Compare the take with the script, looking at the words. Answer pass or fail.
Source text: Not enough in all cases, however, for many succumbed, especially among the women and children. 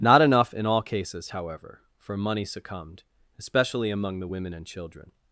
fail